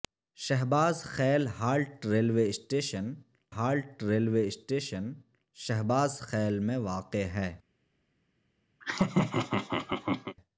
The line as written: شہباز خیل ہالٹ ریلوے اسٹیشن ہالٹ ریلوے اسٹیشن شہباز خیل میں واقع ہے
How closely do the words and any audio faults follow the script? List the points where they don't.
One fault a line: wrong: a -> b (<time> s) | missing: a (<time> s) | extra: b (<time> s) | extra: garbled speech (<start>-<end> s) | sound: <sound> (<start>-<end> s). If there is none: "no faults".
sound: laugh (8.8-10.4 s)